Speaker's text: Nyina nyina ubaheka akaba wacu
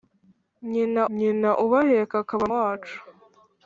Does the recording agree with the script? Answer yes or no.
yes